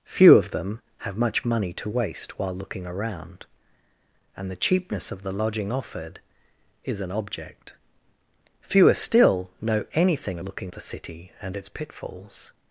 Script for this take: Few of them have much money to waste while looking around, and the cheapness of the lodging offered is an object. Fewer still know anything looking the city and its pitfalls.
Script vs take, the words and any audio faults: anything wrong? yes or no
no